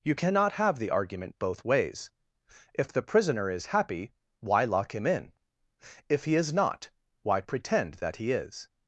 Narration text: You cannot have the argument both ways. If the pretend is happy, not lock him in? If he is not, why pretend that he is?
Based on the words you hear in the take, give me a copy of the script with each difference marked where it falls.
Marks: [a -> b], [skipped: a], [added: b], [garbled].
You cannot have the argument both ways. If the [pretend -> prisoner] is happy, [not -> why] lock him in? If he is not, why pretend that he is?